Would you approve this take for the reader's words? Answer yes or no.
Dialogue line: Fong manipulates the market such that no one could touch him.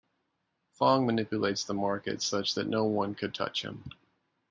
yes